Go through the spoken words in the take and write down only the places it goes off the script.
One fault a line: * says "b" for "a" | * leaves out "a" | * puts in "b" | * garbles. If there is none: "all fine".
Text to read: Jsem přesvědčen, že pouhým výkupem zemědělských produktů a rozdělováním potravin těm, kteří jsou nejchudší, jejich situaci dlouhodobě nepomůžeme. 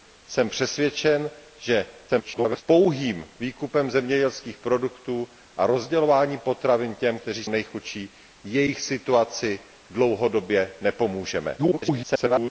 * garbles
* leaves out "jsou"
* garbles